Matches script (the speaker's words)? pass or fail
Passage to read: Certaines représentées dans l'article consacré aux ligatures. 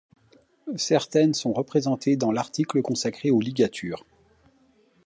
fail